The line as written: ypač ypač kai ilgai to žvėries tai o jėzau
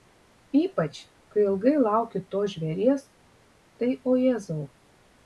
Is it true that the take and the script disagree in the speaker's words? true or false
true